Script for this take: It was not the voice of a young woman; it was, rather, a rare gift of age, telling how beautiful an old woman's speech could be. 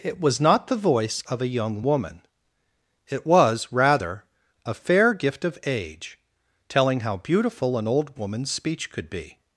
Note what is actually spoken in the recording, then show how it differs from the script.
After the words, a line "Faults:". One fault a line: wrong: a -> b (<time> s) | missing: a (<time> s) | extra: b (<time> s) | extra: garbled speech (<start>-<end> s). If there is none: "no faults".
It was not the voice of a young woman; it was, rather, a fair gift of age, telling how beautiful an old woman's speech could be.
Faults:
wrong: rare -> fair (4.7 s)